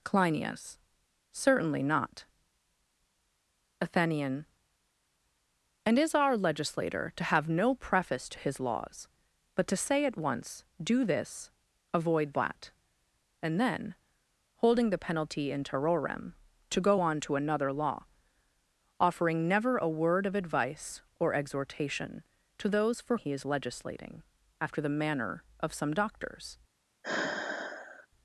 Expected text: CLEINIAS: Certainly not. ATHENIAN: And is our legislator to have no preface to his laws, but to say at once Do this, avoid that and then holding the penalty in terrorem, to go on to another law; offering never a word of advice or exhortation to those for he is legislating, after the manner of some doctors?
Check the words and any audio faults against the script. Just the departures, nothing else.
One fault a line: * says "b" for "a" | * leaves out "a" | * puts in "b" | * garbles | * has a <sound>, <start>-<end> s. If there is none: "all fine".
* has a sigh, 27.0-28.1 s